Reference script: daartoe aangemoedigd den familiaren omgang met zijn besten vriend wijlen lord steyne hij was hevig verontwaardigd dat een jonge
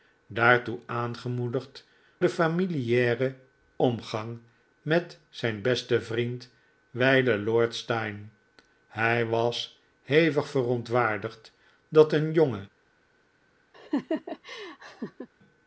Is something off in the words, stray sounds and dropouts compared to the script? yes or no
yes